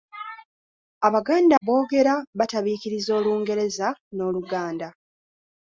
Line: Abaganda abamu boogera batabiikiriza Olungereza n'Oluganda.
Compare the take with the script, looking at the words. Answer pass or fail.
fail